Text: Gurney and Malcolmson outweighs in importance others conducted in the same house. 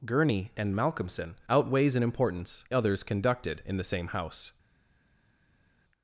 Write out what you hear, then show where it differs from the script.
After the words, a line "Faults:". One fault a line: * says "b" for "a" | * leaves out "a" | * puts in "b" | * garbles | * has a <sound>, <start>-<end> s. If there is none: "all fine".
Gurney and Malcolmson outweighs in importance others conducted in the same house.
Faults:
all fine